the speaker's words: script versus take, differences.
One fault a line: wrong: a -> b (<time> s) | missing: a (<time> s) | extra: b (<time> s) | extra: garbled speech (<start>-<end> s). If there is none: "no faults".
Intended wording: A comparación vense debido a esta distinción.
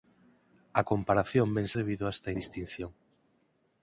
no faults